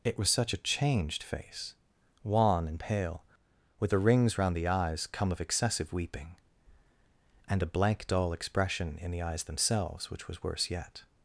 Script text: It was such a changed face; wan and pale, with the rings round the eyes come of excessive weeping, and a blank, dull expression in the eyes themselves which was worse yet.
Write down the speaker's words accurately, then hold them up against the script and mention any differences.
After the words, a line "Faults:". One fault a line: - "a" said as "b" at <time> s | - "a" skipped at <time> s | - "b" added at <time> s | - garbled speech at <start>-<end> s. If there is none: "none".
It was such a changed face; wan and pale, with the rings round the eyes come of excessive weeping, and a blank, dull expression in the eyes themselves which was worse yet.
Faults:
none